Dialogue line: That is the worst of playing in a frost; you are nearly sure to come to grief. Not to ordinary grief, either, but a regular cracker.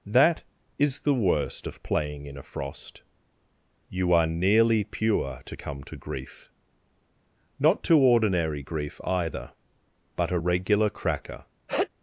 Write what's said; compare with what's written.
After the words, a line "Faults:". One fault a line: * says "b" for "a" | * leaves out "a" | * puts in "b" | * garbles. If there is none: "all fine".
That is the worst of playing in a frost; you are nearly pure to come to grief. Not to ordinary grief, either, but a regular cracker.
Faults:
* says "pure" for "sure"